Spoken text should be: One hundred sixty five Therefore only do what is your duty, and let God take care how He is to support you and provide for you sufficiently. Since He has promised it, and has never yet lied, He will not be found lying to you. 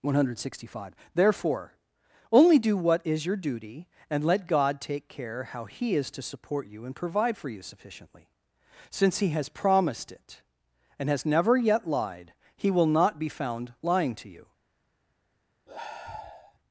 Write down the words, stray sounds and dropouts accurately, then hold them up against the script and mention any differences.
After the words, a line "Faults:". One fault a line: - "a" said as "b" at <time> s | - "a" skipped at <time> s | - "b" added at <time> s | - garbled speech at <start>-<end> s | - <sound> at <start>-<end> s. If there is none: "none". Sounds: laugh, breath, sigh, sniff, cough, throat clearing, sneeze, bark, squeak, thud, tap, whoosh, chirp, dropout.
One hundred sixty five Therefore only do what is your duty, and let God take care how He is to support you and provide for you sufficiently. Since He has promised it, and has never yet lied, He will not be found lying to you.
Faults:
- sigh at 15.7-16.6 s